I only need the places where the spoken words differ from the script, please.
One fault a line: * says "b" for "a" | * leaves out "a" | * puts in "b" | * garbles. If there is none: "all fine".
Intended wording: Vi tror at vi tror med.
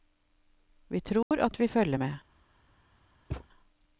* says "følger" for "tror"